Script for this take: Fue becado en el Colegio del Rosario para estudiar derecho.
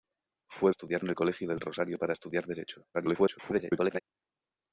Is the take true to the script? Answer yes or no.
no